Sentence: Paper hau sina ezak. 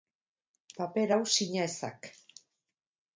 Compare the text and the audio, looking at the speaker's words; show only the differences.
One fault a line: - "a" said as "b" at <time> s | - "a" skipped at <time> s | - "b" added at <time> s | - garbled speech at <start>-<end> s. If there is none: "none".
none